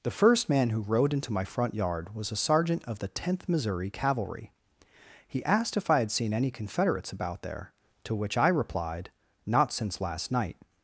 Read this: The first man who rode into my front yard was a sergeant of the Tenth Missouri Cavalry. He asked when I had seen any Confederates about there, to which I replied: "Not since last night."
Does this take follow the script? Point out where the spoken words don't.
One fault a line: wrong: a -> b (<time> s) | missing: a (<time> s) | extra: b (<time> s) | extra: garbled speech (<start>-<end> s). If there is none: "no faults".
wrong: when -> if (5.8 s)